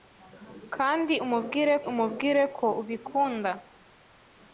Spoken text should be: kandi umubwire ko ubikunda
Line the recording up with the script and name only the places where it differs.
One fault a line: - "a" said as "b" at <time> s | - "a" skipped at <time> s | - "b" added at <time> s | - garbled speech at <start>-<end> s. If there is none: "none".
- "umubwire" added at 1.9 s